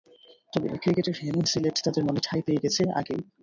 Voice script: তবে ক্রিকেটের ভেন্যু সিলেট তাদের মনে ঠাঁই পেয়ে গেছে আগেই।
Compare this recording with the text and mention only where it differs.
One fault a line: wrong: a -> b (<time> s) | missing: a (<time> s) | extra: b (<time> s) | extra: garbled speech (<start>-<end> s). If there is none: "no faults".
no faults